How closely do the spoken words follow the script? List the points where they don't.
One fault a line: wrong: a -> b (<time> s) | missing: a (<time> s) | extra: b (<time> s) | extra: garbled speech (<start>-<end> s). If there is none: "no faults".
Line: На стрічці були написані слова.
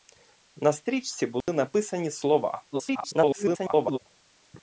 extra: garbled speech (2.7-4.0 s)